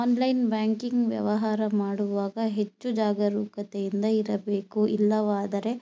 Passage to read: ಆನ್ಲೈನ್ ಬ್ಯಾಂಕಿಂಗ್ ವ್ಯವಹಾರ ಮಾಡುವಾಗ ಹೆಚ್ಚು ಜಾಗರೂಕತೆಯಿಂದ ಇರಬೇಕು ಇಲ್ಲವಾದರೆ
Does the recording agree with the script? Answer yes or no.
yes